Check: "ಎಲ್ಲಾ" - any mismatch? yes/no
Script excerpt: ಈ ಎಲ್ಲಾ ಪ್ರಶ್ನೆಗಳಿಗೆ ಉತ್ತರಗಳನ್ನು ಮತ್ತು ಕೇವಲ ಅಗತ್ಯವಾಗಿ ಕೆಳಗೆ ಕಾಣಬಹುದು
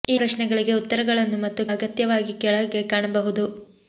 yes